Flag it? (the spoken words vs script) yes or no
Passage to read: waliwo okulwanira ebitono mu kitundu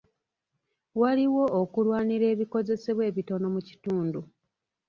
yes